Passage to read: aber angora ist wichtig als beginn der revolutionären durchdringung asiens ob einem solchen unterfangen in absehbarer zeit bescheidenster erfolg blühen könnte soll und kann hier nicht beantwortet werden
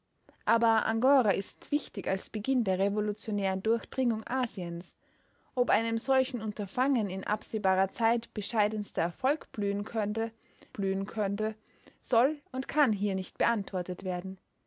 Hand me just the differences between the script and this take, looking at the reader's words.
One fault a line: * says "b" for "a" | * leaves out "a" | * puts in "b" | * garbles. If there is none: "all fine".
* puts in "blühen könnte"